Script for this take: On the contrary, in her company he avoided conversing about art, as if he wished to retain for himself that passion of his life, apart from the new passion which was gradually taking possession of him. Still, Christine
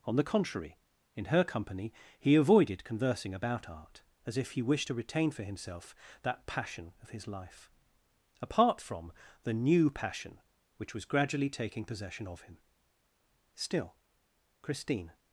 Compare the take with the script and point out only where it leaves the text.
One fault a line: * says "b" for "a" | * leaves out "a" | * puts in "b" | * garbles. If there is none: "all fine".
all fine